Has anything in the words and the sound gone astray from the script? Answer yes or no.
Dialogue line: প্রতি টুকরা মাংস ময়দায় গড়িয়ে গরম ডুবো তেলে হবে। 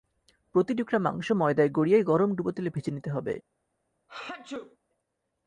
yes